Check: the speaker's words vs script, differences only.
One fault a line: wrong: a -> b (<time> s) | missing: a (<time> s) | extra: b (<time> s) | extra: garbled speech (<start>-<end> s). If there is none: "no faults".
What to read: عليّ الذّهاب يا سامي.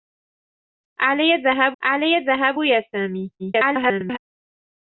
extra: عليّ الذّهاب (1.8 s)
extra: garbled speech (3.4-4.2 s)